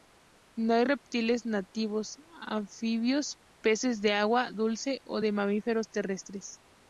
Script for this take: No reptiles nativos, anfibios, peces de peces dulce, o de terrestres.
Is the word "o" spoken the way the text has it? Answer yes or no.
yes